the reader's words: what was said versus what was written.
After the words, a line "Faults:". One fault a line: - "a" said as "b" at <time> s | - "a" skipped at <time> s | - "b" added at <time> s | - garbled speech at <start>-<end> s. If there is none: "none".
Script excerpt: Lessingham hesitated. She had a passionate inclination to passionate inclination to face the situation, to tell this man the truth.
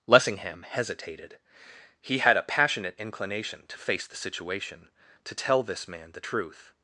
Lessingham hesitated. He had a passionate inclination to face the situation, to tell this man the truth.
Faults:
- "She" said as "He" at 2.0 s
- "passionate inclination to" skipped at 3.8 s